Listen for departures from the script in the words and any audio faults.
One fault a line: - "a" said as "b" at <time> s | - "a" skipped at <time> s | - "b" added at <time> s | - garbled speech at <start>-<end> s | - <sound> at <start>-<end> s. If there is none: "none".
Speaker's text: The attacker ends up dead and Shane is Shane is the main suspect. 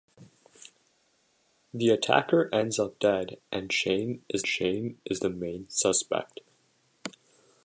none